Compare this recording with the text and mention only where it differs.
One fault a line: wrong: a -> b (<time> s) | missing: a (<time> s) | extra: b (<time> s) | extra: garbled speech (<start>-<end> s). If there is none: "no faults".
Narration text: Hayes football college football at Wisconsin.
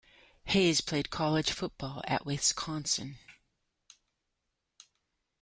wrong: football -> played (0.8 s)